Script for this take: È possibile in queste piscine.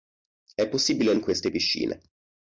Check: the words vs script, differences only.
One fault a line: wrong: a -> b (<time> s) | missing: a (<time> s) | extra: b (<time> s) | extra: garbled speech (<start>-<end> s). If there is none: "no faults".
no faults